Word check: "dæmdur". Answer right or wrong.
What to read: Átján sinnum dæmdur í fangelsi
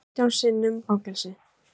wrong